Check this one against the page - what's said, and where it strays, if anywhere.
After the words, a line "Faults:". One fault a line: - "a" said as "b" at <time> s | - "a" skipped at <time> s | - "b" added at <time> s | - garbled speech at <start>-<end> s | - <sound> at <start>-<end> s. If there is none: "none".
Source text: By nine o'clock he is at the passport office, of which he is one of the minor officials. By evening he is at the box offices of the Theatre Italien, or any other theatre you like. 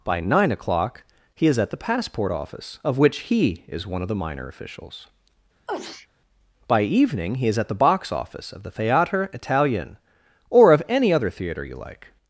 By nine o'clock he is at the passport office, of which he is one of the minor officials. By evening he is at the box office of the Theatre Italien, or of any other theatre you like.
Faults:
- sneeze at 5.7-6.1 s
- "offices" said as "office" at 8.1 s
- "of" added at 10.7 s